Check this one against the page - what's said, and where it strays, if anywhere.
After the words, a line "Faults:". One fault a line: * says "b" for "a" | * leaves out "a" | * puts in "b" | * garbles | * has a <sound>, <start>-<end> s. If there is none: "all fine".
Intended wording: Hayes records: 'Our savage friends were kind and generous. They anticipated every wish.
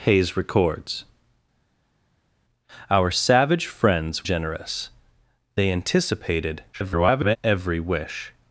Hayes records: 'Our savage friends generous. They anticipated [garbled] every wish.
Faults:
* leaves out "were kind and"
* garbles